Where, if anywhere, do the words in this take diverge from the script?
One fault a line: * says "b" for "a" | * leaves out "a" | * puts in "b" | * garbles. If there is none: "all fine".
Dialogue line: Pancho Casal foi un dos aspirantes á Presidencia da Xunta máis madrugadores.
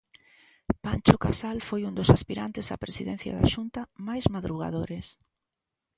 all fine